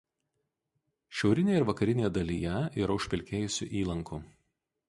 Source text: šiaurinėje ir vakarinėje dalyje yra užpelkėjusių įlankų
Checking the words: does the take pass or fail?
pass